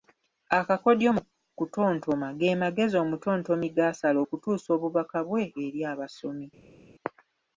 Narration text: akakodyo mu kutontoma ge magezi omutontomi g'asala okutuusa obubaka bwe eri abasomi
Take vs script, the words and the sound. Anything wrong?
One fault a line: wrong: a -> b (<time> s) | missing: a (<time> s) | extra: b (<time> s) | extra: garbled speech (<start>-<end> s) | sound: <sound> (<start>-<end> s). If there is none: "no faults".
no faults